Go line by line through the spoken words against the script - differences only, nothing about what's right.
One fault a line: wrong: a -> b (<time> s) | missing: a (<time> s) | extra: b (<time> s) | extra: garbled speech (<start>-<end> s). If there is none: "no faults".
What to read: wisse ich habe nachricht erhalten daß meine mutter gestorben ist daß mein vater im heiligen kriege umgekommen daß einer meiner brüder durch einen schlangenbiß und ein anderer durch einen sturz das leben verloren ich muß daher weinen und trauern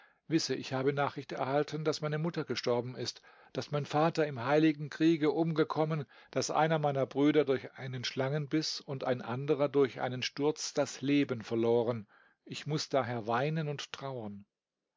no faults